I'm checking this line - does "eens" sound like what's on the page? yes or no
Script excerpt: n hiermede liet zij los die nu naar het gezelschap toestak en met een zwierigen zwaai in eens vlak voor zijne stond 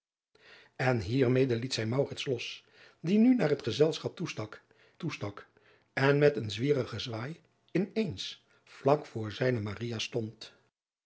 yes